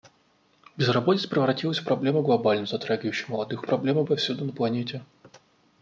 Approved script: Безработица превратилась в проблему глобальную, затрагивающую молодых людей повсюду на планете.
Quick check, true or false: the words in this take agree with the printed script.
false